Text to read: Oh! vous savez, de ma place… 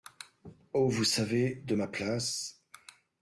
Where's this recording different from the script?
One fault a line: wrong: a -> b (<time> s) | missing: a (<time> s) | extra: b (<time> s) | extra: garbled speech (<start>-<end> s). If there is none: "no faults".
no faults